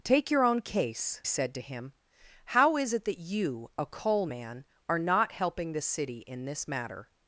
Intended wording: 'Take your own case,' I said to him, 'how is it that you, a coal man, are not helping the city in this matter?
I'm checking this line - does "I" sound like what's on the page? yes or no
no